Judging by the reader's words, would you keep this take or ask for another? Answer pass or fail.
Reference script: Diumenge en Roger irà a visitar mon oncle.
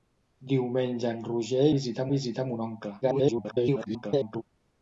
fail